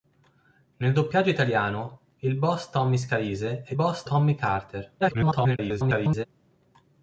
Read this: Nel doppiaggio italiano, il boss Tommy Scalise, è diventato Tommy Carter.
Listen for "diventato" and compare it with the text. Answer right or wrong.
wrong